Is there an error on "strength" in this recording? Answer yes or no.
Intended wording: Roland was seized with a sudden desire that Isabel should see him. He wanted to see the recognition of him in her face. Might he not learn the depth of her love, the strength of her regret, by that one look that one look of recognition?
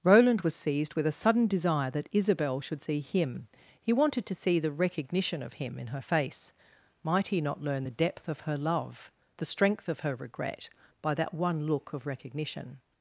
no